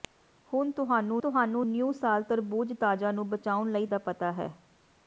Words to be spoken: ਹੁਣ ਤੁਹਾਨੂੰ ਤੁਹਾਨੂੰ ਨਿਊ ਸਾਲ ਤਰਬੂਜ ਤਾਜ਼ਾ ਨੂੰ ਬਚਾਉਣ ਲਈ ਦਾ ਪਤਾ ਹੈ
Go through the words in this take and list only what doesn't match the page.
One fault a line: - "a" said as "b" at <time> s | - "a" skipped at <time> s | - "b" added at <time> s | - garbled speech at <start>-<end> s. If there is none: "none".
none